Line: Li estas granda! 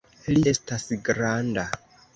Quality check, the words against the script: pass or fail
pass